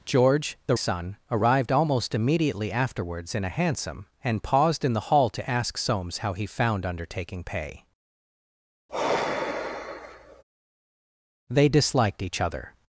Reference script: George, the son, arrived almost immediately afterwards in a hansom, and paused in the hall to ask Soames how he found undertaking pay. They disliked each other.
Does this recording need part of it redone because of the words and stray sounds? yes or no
yes